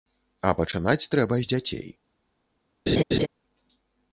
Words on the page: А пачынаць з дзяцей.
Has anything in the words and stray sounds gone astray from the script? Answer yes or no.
yes